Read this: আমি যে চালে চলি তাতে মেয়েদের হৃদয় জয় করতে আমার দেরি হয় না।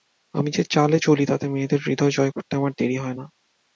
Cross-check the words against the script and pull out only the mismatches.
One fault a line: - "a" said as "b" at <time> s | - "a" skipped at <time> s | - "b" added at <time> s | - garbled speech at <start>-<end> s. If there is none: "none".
none